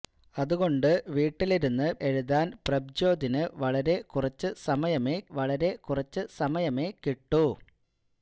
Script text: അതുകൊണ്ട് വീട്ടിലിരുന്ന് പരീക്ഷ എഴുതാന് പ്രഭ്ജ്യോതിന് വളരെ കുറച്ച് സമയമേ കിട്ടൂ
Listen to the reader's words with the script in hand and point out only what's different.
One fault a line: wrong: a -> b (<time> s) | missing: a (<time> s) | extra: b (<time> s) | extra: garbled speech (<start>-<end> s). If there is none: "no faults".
missing: പരീക്ഷ (1.9 s)
extra: വളരെ കുറച്ച് സമയമേ (5.4 s)